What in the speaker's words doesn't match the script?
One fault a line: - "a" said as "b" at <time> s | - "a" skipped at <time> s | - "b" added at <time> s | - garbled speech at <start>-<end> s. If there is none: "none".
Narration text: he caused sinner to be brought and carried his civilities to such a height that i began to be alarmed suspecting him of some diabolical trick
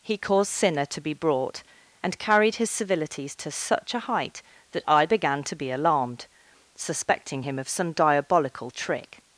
none